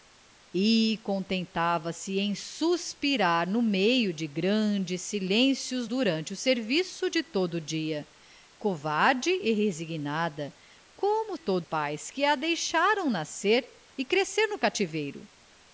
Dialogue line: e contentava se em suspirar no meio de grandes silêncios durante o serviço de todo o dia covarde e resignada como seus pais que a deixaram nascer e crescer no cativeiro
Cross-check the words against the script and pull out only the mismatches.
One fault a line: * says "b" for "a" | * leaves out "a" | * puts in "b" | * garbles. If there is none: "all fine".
* says "todo" for "seus"